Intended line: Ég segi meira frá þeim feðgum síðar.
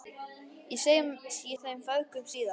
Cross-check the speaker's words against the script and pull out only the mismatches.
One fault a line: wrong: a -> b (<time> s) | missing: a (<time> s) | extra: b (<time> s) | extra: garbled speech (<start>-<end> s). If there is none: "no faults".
missing: segi meira frá (0.8 s)